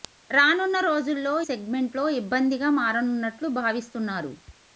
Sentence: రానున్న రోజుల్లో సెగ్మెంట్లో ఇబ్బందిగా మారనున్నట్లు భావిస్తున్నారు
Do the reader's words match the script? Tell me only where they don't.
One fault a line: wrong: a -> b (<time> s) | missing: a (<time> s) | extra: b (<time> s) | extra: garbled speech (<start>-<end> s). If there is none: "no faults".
no faults